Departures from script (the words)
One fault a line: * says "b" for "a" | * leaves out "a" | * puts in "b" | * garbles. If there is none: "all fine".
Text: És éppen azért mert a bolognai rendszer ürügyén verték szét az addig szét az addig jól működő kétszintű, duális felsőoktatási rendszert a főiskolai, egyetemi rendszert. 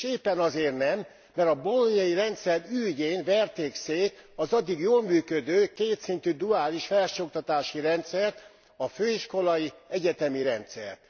* puts in "nem"
* leaves out "szét az addig"